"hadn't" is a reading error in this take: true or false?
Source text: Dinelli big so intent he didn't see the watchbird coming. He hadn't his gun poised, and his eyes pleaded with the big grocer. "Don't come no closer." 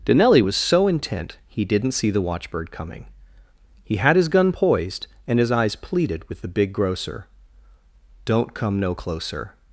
true